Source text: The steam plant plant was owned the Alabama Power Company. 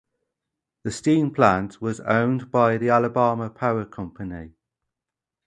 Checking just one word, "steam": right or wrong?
right